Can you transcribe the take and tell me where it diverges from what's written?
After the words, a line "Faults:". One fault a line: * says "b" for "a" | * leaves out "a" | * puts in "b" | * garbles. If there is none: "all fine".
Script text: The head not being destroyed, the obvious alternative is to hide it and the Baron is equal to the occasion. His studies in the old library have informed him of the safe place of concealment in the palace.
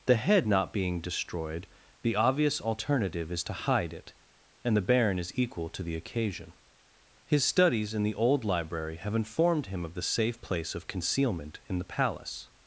The head not being destroyed, the obvious alternative is to hide it and the Baron is equal to the occasion. His studies in the old library have informed him of the safe place of concealment in the palace.
Faults:
all fine